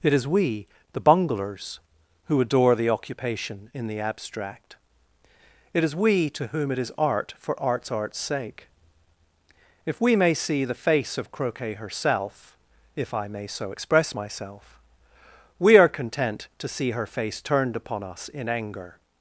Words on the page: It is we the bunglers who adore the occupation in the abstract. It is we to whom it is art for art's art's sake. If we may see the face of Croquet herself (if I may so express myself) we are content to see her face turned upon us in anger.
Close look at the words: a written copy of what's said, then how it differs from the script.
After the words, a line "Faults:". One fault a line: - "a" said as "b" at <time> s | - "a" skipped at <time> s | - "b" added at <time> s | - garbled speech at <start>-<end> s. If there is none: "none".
It is we the bunglers who adore the occupation in the abstract. It is we to whom it is art for art's art's sake. If we may see the face of Croquet herself (if I may so express myself) we are content to see her face turned upon us in anger.
Faults:
none